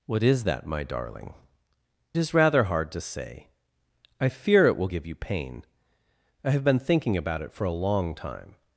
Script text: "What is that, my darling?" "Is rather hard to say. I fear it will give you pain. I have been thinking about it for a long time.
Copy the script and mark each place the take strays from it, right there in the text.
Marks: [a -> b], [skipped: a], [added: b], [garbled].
"What is that, my darling?" "Is rather hard to say. I fear it will give you pain. I have been thinking about it for a long time.